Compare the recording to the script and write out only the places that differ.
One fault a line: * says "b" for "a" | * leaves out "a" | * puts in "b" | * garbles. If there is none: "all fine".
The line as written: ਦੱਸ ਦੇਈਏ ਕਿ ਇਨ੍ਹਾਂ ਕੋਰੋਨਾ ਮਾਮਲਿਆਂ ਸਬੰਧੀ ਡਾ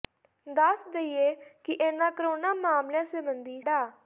all fine